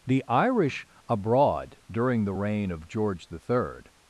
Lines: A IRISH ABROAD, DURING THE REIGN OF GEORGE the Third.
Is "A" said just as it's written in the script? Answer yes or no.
no